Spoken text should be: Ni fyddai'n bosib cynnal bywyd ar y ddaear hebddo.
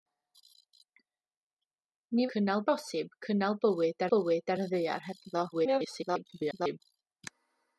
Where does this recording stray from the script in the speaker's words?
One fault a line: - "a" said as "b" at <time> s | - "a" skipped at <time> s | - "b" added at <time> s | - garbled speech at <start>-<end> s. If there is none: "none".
- "fyddai'n" said as "cynnal" at 2.3 s
- "bywyd" added at 4.1 s
- garbled speech at 5.5-6.8 s